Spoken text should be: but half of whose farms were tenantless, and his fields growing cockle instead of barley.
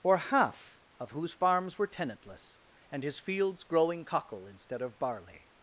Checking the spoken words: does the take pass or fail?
fail